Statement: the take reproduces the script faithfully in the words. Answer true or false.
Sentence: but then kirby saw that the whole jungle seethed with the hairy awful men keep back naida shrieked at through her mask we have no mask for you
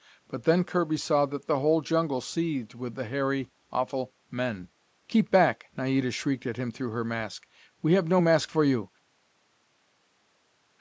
false